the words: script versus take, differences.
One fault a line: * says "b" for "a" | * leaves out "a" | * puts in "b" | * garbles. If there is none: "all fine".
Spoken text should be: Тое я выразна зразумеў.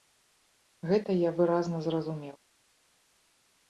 * says "Гэта" for "Тое"